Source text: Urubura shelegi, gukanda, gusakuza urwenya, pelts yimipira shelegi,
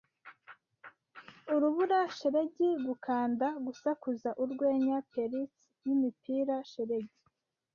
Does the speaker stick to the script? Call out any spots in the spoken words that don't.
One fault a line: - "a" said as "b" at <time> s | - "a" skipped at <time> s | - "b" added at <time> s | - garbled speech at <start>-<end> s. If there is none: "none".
none